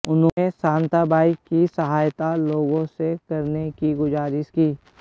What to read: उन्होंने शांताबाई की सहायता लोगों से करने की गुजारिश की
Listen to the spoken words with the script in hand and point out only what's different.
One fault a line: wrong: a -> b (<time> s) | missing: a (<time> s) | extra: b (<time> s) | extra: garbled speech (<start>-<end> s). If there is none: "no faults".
no faults